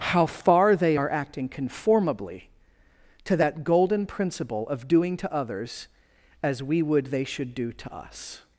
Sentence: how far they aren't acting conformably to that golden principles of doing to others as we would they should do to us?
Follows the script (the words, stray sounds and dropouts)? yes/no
no